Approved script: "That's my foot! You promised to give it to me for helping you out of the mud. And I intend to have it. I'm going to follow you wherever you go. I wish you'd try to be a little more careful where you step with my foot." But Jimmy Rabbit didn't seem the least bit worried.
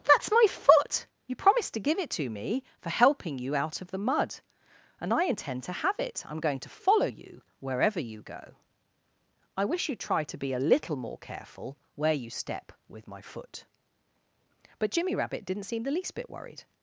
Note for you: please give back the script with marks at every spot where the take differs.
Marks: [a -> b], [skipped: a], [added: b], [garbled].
"That's my foot! You promised to give it to me for helping you out of the mud. And I intend to have it. I'm going to follow you wherever you go. I wish you'd try to be a little more careful where you step with my foot." But Jimmy Rabbit didn't seem the least bit worried.